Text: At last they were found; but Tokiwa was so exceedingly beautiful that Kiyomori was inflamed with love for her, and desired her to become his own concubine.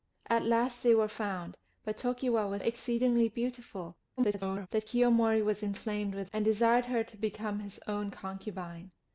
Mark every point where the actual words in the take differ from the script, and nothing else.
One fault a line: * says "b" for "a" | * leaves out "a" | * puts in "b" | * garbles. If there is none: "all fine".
* leaves out "so"
* garbles
* leaves out "love for her"